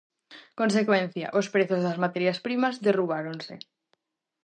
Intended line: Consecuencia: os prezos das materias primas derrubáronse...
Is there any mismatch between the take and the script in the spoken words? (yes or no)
no